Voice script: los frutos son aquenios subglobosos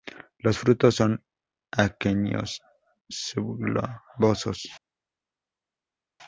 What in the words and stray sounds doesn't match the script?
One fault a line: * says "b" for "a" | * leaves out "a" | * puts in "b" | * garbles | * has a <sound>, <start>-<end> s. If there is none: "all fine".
all fine